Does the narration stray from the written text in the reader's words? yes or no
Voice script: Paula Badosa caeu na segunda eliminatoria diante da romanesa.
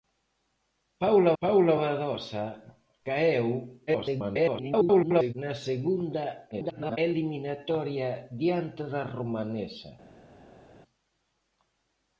yes